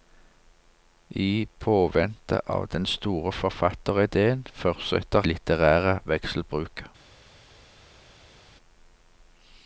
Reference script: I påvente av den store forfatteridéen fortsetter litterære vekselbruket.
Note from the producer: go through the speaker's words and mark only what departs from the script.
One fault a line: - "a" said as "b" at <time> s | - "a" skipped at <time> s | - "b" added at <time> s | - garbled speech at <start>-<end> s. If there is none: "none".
none